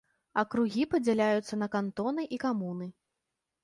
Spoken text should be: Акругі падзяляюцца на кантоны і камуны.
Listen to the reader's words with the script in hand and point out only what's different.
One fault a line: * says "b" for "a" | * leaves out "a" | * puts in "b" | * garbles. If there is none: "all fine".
all fine